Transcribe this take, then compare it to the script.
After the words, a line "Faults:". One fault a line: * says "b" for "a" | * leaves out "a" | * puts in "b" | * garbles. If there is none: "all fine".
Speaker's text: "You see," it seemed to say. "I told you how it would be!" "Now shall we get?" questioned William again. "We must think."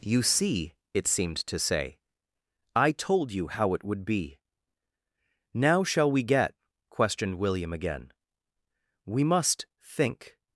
"You see," it seemed to say. "I told you how it would be!" "Now shall we get?" questioned William again. "We must think."
Faults:
all fine